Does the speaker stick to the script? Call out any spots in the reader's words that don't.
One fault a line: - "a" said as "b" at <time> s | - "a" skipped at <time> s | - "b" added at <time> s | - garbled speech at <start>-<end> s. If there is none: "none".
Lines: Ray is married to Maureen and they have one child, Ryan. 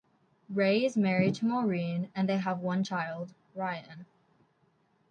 none